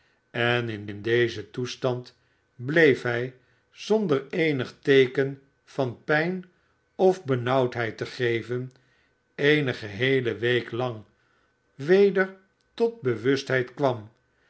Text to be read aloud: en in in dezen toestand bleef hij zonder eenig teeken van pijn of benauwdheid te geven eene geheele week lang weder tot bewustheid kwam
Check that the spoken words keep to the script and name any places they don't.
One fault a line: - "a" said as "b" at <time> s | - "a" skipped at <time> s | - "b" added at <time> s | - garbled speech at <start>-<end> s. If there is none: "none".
none